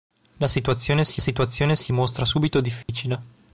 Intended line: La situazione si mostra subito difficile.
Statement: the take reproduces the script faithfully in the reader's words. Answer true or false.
false